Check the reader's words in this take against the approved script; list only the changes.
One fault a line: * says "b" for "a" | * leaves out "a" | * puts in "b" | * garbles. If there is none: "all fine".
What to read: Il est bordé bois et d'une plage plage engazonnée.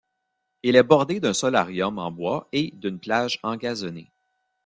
* puts in "d'un solarium en"
* leaves out "plage"